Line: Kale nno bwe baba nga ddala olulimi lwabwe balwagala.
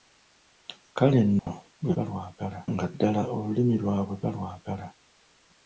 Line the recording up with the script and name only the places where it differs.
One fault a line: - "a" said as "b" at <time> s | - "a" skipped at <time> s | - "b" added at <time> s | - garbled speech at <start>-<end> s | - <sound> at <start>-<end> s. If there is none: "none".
- dropout at 1.4-1.5 s
- "baba" said as "balwagala" at 1.9 s